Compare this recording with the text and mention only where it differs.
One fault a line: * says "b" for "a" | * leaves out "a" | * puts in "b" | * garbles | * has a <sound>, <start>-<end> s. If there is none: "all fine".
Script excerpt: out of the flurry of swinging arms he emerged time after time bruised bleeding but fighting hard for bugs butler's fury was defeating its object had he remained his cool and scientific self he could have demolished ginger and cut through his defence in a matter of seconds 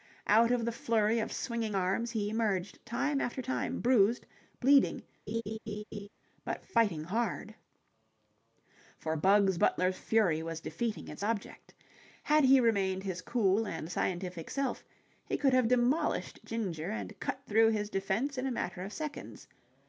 * has a laugh, 5.3-6.1 s